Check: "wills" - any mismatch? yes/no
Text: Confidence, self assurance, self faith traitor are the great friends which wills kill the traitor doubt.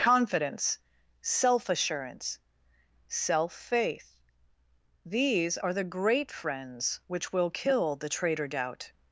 yes